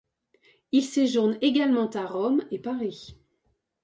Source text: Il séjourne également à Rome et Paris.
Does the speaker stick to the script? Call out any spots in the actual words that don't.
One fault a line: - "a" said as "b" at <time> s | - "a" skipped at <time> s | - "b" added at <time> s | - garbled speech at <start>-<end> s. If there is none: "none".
none